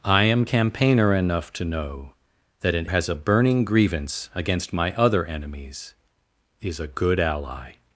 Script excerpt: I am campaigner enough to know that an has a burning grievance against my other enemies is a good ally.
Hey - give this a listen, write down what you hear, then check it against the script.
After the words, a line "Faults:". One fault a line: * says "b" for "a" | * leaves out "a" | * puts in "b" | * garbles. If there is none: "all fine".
I am campaigner enough to know that an has a burning grievance against my other enemies is a good ally.
Faults:
all fine